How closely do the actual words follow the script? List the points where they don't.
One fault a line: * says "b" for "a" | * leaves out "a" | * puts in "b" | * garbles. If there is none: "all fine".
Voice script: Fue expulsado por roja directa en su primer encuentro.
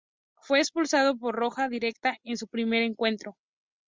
all fine